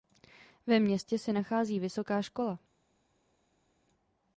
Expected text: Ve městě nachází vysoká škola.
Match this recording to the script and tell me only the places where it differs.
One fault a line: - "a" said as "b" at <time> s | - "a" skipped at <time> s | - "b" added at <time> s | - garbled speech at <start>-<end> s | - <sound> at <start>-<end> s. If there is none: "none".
- "se" added at 1.2 s